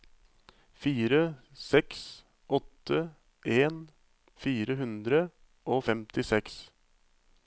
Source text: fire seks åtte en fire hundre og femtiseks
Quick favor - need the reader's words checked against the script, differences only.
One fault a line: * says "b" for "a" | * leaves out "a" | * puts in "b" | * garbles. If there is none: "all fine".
all fine